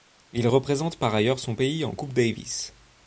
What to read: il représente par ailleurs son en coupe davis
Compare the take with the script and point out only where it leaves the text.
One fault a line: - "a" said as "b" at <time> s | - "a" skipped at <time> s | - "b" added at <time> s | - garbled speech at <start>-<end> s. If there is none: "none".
- "pays" added at 1.6 s